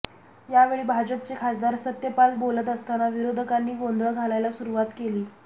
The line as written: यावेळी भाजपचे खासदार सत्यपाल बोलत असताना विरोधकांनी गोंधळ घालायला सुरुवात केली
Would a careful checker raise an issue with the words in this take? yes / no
no